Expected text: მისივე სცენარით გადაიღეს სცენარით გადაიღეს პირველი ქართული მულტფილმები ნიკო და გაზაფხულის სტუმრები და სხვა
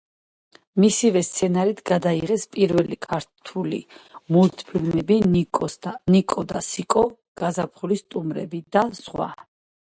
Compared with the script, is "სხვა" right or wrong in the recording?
right